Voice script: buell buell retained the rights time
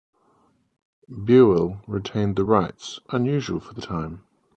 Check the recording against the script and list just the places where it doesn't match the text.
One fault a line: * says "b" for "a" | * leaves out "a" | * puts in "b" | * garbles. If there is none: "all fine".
* leaves out "buell"
* puts in "unusual for the"